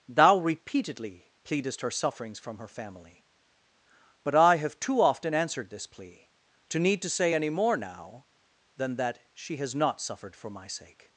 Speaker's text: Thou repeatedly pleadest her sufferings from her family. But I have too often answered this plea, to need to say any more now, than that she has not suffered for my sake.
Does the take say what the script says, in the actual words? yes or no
yes